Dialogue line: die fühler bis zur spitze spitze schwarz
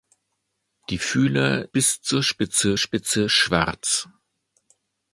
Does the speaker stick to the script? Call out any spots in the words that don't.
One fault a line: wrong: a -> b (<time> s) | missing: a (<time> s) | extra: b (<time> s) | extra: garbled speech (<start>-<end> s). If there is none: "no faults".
no faults